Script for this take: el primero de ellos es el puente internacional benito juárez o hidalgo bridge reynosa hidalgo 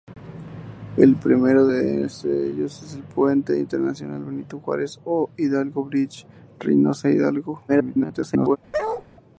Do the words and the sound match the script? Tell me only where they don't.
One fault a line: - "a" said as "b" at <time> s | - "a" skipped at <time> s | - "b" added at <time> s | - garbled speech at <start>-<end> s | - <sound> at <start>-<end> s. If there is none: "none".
- garbled speech at 7.7-8.6 s
- bark at 8.7-9.0 s